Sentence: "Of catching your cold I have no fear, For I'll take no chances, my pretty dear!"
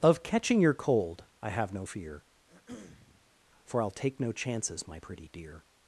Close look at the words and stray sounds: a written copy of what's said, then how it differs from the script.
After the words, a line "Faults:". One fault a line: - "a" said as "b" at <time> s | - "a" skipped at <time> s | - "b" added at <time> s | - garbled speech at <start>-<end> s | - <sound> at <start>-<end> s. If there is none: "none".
"Of catching your cold I have no fear, For I'll take no chances, my pretty dear!"
Faults:
- throat clearing at 2.5-3.3 s